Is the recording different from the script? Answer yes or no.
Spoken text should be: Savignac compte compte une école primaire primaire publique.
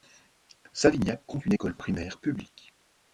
yes